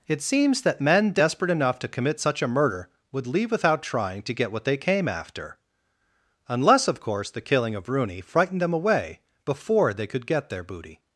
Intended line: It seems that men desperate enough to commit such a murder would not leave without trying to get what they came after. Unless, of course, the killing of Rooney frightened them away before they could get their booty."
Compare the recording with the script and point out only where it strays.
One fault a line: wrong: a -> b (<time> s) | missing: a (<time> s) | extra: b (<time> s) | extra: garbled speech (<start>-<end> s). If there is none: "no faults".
missing: not (3.3 s)